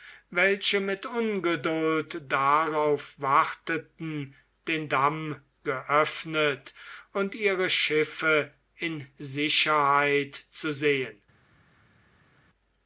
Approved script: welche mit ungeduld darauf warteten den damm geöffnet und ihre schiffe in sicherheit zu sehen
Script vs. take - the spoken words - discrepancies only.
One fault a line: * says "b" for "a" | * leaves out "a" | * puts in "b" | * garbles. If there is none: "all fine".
all fine